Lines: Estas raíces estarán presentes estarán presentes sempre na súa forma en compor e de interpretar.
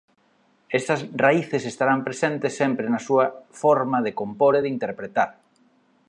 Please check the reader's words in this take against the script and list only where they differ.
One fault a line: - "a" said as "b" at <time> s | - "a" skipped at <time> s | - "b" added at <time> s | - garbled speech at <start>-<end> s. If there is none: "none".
- "estarán presentes" skipped at 2.5 s
- "en" said as "de" at 4.0 s